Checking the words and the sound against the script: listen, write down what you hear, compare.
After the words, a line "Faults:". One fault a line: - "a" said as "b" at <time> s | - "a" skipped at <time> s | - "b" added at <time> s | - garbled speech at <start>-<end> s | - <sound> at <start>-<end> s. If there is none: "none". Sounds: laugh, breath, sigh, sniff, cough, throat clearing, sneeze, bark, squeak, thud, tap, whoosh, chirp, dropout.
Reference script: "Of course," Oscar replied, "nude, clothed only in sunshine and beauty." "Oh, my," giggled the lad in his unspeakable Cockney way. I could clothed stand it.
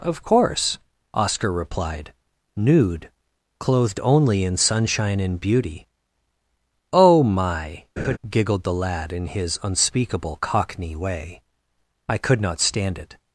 "Of course," Oscar replied, "nude, clothed only in sunshine and beauty." "Oh, my," giggled the lad in his unspeakable Cockney way. I could not stand it.
Faults:
- laugh at 8.0-8.2 s
- "clothed" said as "not" at 12.4 s